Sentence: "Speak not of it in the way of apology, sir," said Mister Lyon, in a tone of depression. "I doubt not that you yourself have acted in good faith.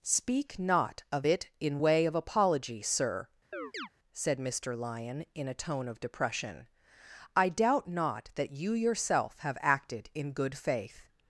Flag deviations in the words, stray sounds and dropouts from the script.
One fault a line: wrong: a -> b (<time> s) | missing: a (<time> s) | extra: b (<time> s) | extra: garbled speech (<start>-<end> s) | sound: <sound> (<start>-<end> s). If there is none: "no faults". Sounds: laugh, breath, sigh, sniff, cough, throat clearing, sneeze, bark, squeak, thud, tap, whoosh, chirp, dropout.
missing: the (1.8 s)
sound: chirp (3.5-3.9 s)